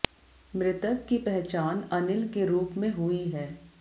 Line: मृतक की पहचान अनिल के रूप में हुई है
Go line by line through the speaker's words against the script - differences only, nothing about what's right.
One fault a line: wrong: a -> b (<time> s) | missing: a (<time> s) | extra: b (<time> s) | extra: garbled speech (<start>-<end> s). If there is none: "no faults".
no faults